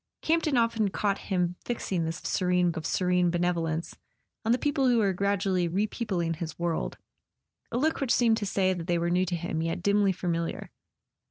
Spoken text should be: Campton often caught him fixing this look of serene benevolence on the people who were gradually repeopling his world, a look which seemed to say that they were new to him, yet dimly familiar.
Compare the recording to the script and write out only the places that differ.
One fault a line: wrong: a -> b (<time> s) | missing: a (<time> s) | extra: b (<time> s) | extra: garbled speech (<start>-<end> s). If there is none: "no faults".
wrong: look -> serene (2.2 s)